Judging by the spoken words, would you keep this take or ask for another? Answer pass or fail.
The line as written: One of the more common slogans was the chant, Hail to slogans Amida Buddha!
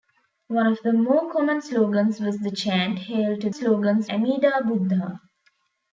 pass